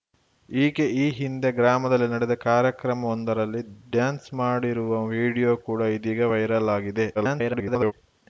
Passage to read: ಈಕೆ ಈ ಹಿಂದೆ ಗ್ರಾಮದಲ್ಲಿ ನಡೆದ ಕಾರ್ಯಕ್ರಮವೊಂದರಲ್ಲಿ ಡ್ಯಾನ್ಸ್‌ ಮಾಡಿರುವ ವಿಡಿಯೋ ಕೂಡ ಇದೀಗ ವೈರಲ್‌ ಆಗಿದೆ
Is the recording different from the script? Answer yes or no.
yes